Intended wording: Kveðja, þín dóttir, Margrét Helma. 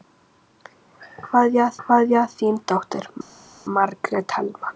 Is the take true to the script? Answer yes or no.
no